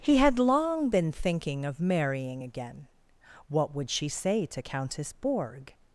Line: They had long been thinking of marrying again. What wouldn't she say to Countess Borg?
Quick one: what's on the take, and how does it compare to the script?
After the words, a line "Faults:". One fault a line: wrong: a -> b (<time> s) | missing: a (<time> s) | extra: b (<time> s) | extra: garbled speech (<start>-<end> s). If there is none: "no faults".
He had long been thinking of marrying again. What would she say to Countess Borg?
Faults:
wrong: They -> He (0.0 s)
wrong: wouldn't -> would (3.7 s)